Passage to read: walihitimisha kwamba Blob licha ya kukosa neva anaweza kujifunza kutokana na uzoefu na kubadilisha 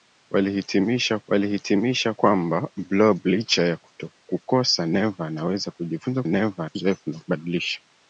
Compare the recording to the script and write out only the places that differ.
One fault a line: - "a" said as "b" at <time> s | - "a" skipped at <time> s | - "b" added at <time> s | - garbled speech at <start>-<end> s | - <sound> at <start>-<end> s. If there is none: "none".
- "walihitimisha" added at 1.3 s
- "kutokana" said as "neva" at 6.3 s